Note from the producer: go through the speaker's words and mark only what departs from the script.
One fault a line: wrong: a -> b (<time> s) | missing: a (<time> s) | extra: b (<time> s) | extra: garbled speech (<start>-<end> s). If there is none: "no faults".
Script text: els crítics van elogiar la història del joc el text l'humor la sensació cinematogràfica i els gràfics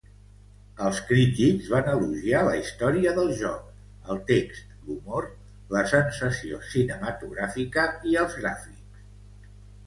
no faults